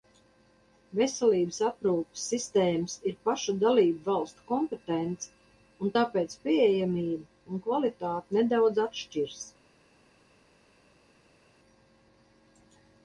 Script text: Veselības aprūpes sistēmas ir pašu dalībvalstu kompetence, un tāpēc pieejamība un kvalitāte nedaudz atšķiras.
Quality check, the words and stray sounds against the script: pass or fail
pass